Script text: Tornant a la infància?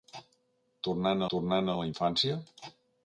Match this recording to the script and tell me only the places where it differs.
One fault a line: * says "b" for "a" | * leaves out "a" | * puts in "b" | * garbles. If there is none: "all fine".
* puts in "tornant"